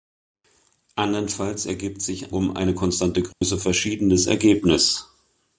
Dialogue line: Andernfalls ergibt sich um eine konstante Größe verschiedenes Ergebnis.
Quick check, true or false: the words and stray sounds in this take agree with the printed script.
false